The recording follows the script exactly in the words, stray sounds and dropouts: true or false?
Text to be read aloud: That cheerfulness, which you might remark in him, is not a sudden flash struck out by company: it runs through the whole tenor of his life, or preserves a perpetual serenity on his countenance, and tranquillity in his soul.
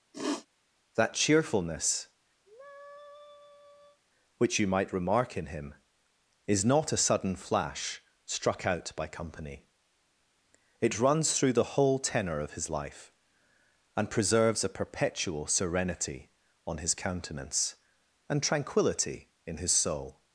false